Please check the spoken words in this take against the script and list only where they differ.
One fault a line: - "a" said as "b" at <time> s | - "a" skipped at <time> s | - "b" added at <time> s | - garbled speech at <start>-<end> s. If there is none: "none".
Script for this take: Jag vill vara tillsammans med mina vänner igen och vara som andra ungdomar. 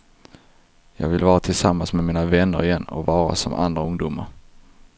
none